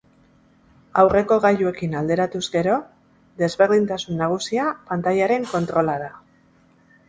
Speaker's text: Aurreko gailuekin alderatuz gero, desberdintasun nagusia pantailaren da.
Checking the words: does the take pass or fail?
fail